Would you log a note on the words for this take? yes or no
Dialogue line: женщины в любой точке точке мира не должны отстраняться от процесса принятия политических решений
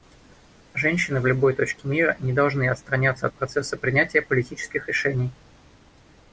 yes